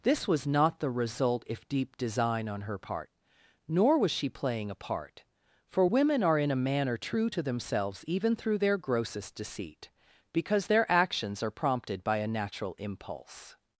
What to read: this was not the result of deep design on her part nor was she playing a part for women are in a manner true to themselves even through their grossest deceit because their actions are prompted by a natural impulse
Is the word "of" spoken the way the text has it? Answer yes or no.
no